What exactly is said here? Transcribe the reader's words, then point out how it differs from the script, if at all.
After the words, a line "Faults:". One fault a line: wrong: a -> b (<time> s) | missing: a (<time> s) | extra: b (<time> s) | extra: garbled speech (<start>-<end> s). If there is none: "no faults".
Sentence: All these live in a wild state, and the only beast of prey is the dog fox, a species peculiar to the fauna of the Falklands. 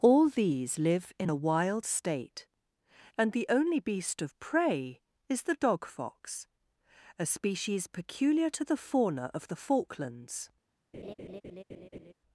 All these live in a wild state, and the only beast of prey is the dog fox, a species peculiar to the fauna of the Falklands.
Faults:
no faults